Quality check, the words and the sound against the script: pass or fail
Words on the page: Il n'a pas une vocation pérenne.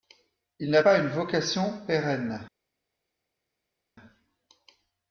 pass